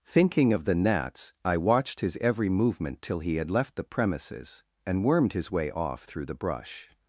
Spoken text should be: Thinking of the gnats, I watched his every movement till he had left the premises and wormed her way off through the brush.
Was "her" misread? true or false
true